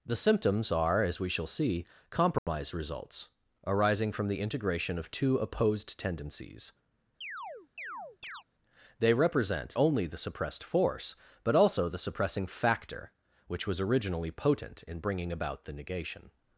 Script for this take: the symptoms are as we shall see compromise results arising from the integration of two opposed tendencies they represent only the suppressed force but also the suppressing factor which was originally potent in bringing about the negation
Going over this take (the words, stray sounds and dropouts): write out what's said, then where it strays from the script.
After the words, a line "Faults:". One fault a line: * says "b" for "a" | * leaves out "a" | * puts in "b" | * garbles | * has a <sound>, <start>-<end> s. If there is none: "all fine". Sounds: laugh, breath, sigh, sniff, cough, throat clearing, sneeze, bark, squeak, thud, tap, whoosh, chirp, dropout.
the symptoms are as we shall see compromise results arising from the integration of two opposed tendencies they represent only the suppressed force but also the suppressing factor which was originally potent in bringing about the negation
Faults:
* has a dropout, 2.4-2.5 s
* has a chirp, 7.2-8.4 s